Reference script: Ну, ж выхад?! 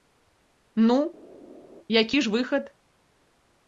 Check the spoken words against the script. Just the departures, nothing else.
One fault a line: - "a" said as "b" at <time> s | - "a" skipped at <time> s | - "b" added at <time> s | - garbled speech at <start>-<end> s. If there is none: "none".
- "які" added at 2.0 s